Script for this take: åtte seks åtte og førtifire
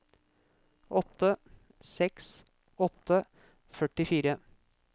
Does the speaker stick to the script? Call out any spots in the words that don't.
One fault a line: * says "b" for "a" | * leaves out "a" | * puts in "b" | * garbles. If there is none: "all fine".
all fine